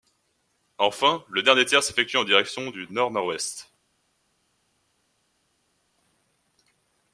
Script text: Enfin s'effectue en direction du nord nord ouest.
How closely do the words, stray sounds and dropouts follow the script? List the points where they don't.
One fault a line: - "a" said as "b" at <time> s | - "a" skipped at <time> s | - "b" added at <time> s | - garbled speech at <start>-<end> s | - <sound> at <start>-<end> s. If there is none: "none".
- "le dernier tiers" added at 1.3 s